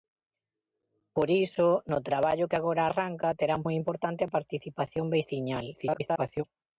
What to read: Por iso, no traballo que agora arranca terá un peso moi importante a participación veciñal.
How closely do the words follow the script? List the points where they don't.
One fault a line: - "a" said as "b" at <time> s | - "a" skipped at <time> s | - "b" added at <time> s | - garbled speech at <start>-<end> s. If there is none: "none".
- "peso" skipped at 3.6 s
- garbled speech at 5.7-6.4 s